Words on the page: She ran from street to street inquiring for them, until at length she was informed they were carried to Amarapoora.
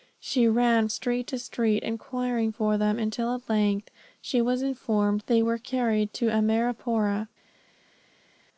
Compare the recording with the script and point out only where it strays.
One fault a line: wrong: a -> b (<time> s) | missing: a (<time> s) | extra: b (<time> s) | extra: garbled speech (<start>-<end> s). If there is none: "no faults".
missing: from (0.9 s)